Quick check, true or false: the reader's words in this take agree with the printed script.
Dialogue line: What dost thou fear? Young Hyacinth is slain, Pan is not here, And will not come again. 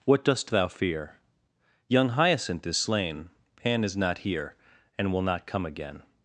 true